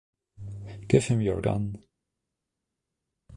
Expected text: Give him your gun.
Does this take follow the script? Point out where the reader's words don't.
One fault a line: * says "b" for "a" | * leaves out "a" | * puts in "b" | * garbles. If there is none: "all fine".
all fine